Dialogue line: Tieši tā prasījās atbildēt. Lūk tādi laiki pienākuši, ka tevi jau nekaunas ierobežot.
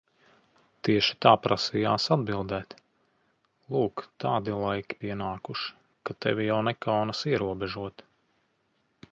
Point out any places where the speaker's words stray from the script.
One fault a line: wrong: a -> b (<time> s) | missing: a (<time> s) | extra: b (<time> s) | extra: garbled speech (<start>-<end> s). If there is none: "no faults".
no faults